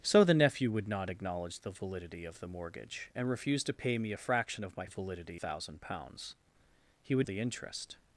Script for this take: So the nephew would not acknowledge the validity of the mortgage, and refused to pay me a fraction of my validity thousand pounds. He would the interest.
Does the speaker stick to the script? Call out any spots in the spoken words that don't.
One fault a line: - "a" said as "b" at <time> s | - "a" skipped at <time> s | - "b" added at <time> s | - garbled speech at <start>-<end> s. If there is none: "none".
none